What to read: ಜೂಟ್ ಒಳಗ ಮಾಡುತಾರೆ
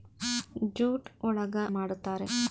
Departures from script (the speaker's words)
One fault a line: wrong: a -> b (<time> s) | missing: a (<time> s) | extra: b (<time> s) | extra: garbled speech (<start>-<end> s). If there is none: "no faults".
no faults